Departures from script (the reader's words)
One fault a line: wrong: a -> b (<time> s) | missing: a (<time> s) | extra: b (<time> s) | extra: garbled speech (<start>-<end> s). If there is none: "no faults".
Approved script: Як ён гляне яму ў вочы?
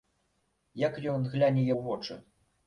missing: яму (1.7 s)